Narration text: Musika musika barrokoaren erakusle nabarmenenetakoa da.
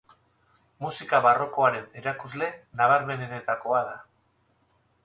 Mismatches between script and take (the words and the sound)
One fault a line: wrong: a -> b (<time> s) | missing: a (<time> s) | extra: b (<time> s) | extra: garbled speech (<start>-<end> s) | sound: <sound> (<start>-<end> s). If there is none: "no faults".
missing: musika (1.2 s)